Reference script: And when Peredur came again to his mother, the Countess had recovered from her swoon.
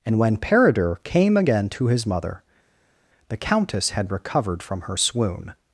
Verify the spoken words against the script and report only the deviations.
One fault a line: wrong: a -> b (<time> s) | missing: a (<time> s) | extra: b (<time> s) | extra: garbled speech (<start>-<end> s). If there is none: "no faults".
no faults